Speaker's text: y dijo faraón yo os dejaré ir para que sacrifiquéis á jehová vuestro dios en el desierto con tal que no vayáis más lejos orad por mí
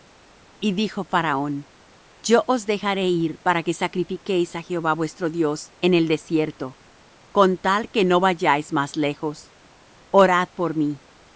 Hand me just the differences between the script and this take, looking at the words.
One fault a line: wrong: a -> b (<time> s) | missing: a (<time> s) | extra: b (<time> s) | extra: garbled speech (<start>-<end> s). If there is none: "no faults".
no faults